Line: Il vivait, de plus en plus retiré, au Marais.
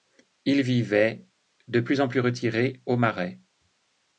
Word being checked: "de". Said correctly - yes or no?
yes